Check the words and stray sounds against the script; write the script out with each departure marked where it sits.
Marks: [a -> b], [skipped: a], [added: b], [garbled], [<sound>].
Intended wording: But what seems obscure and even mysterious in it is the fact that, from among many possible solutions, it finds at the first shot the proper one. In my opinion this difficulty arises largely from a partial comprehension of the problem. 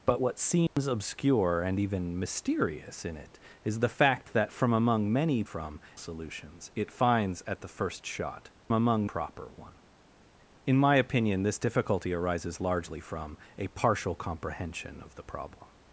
But what seems [dropout] obscure and even mysterious in it is the fact that, from among many [possible -> from] solutions, it finds at the first shot [the -> among] proper one. In my opinion this difficulty arises largely from a partial comprehension of the problem.